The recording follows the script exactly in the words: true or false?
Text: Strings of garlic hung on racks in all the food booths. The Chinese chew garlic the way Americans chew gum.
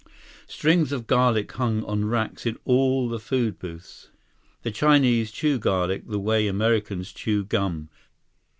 true